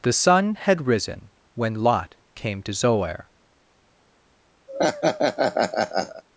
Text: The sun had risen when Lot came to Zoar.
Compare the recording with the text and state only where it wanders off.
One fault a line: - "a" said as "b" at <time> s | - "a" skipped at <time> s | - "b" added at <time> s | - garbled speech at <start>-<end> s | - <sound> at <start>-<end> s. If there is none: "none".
- laugh at 4.7-6.2 s